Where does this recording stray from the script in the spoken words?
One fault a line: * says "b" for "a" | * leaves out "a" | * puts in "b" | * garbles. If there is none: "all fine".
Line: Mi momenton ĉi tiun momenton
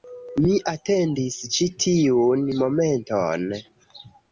* says "atendis" for "momenton"